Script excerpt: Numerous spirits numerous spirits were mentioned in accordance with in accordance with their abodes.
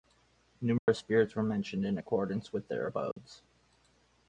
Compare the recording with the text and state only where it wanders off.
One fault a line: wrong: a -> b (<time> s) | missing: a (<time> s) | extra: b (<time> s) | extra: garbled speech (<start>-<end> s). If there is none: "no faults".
missing: numerous spirits (1.4 s)
missing: in accordance with (2.7 s)